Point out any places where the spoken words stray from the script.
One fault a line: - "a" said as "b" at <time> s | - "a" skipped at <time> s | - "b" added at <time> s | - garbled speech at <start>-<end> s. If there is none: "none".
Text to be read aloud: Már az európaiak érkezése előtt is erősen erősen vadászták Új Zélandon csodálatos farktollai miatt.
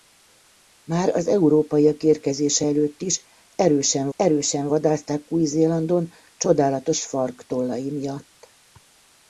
none